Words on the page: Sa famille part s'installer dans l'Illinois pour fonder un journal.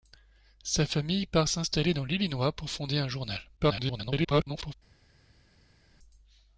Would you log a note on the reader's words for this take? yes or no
yes